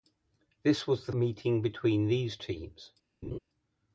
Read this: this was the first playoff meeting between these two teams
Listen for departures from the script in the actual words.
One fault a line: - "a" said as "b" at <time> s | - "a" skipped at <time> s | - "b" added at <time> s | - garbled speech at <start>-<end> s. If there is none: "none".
- "first playoff" skipped at 1.1 s
- "two" skipped at 2.4 s